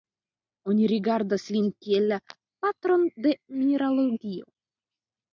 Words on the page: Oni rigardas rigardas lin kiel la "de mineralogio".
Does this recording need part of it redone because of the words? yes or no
yes